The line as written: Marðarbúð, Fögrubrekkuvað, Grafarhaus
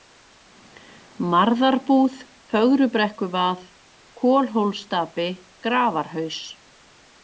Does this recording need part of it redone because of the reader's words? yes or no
yes